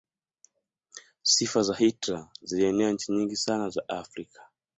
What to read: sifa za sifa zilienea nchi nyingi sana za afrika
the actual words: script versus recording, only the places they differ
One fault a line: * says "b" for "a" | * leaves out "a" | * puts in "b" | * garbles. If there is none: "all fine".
* says "hitler" for "sifa"